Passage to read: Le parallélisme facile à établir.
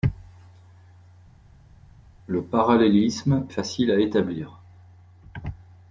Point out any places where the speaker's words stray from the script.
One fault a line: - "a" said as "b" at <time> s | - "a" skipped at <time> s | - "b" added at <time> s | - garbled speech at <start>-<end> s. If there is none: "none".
none